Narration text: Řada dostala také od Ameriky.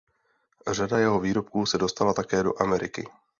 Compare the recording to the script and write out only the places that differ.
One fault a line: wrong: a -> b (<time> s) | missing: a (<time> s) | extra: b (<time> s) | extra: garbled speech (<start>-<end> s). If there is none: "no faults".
extra: jeho výrobků se (1.0 s)
wrong: od -> do (2.4 s)